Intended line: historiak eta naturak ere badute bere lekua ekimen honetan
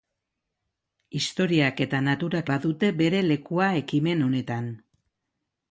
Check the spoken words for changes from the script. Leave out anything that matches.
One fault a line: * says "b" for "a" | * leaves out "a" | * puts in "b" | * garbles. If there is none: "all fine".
* leaves out "ere"